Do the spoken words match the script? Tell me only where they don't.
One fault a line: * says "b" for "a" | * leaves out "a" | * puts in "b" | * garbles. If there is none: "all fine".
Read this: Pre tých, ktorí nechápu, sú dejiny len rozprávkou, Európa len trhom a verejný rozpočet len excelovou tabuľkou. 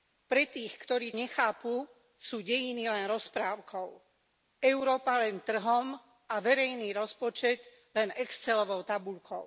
all fine